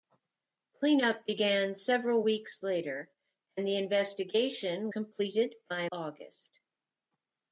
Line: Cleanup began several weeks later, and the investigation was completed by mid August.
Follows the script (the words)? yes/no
no